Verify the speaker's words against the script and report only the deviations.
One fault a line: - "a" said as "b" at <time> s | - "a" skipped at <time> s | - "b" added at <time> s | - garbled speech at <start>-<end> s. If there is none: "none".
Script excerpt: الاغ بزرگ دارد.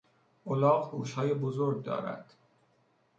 - "گوشهای" added at 0.9 s